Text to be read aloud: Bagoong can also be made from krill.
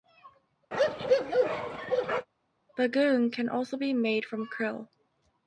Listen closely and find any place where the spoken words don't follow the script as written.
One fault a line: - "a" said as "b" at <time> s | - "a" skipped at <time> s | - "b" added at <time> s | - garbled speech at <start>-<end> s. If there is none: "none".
none